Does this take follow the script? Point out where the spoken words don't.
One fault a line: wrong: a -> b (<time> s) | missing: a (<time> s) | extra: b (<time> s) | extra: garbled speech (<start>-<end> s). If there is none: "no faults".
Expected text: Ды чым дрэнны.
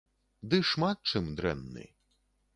extra: шмат (0.7 s)